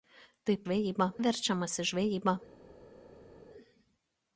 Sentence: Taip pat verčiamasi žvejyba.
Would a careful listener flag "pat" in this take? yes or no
yes